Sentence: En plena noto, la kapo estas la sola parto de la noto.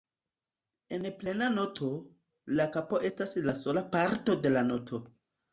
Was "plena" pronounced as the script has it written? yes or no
yes